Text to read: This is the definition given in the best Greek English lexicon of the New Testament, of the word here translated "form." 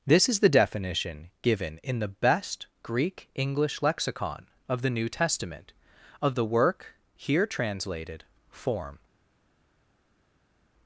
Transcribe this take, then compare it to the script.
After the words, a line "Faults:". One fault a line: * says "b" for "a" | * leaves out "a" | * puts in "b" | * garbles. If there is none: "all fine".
This is the definition given in the best Greek English lexicon of the New Testament, of the work here translated "form."
Faults:
* says "work" for "word"